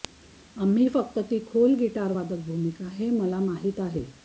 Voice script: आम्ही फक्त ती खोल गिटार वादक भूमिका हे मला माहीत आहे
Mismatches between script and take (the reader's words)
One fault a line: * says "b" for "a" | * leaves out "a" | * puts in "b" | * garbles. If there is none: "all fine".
all fine